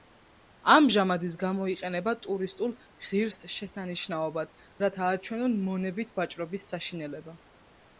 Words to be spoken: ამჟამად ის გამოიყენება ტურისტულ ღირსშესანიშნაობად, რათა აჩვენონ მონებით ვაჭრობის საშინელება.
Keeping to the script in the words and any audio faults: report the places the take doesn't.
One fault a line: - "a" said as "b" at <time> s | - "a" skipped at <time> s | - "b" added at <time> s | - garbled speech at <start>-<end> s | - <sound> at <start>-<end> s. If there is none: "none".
none